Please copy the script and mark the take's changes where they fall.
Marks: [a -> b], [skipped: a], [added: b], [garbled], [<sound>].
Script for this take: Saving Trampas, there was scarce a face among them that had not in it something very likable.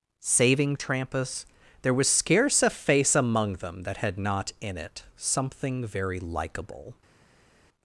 Saving Trampas, there was scarce a face among them that had not in it something very likable.